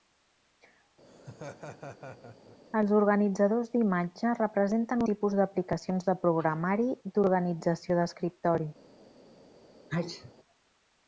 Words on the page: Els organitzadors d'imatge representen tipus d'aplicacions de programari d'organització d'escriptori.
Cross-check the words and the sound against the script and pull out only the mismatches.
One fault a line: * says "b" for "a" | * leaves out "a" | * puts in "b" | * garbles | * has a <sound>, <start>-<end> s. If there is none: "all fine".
* has a laugh, 1.0-2.6 s
* has a sneeze, 9.9-10.3 s